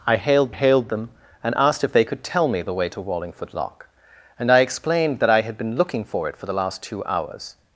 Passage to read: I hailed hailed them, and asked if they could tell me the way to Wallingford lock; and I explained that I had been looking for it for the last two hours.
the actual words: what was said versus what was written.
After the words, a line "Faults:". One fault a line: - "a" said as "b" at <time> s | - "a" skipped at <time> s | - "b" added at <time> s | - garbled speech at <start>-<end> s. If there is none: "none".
I hailed hailed them, and asked if they could tell me the way to Wallingford lock; and I explained that I had been looking for it for the last two hours.
Faults:
none